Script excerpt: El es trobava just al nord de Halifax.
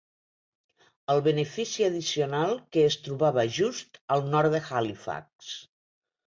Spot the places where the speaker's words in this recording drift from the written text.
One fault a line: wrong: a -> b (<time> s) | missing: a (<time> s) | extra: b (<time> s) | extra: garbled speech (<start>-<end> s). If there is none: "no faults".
extra: benefici addicional que (1.3 s)